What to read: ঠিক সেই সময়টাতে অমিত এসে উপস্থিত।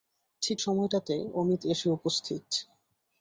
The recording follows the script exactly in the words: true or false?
false